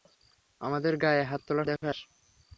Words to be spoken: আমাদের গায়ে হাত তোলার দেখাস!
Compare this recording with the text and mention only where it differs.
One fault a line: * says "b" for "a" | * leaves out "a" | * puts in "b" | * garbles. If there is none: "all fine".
all fine